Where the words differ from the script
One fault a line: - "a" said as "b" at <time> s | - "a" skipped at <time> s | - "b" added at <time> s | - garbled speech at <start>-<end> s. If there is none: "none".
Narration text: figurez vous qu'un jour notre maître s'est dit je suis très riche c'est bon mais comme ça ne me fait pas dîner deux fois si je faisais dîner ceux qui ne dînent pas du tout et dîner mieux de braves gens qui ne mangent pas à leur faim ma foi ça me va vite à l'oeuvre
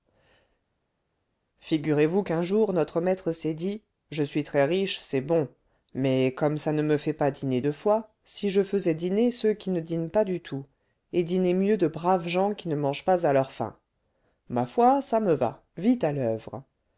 none